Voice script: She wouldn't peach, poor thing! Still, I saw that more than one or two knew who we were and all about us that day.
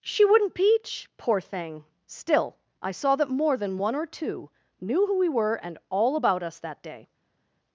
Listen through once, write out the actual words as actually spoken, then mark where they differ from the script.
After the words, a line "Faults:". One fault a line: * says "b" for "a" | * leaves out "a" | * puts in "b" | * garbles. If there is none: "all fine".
She wouldn't peach, poor thing! Still, I saw that more than one or two knew who we were and all about us that day.
Faults:
all fine